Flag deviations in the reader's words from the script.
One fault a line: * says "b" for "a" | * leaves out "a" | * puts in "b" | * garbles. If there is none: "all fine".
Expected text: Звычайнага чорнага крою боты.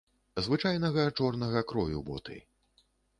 all fine